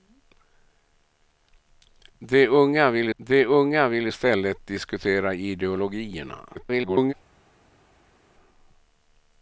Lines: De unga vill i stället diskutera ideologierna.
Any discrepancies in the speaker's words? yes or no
yes